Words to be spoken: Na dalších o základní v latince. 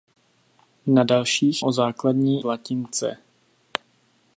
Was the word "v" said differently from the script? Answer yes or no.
no